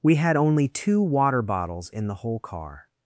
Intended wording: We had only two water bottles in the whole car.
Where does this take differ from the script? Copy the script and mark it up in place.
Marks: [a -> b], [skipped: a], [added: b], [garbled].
We had only two water bottles in the whole car.